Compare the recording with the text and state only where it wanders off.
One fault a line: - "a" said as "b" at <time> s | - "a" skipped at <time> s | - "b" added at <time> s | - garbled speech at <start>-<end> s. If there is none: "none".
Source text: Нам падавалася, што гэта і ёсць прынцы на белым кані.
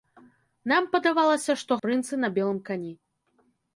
- "гэта і ёсць" skipped at 1.8 s